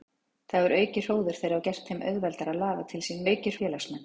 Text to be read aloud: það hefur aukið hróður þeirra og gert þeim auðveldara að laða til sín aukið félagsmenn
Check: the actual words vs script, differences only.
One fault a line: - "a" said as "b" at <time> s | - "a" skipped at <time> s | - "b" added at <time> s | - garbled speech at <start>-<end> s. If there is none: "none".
none